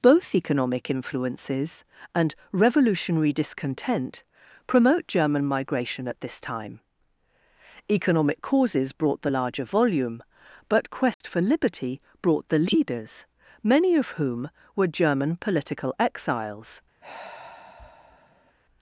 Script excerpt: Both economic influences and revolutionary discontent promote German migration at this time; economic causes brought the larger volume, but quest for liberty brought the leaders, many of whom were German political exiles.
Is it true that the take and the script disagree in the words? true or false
false